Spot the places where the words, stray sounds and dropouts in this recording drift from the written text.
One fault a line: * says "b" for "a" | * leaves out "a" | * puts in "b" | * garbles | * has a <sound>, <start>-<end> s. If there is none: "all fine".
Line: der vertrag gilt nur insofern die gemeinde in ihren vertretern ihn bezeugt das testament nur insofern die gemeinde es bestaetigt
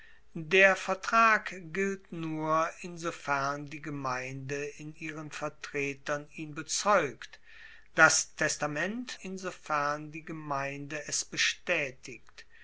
* leaves out "nur"